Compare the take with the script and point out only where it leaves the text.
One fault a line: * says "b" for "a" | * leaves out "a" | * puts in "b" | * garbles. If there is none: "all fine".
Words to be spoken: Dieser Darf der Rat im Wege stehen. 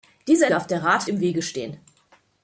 all fine